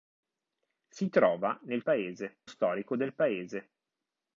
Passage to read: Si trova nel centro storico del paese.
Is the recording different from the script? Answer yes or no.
yes